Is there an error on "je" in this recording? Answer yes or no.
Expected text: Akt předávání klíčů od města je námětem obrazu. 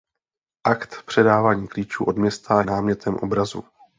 yes